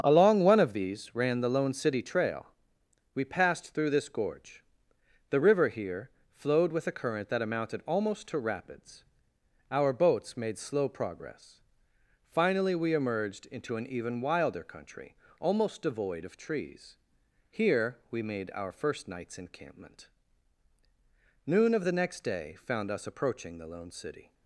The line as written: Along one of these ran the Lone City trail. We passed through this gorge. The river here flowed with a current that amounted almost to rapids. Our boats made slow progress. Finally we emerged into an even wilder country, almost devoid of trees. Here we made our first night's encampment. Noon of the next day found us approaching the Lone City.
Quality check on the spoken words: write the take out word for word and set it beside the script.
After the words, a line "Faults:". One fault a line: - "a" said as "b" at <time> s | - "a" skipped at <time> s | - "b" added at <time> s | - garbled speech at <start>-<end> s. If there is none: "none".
Along one of these ran the Lone City trail. We passed through this gorge. The river here flowed with a current that amounted almost to rapids. Our boats made slow progress. Finally we emerged into an even wilder country, almost devoid of trees. Here we made our first night's encampment. Noon of the next day found us approaching the Lone City.
Faults:
none